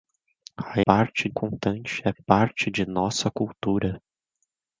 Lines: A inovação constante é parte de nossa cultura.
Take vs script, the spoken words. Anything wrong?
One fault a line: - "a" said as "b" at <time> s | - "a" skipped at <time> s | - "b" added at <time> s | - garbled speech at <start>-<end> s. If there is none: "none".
- "inovação" said as "parte" at 0.9 s